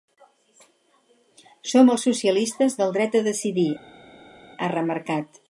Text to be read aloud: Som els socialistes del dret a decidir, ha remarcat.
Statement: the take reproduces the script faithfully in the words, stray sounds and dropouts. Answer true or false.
true